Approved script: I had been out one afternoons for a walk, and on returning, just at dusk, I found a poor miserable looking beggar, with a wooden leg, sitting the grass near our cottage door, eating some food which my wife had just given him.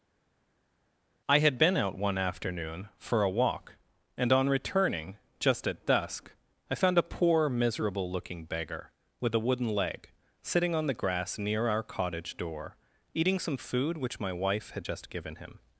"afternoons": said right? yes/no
no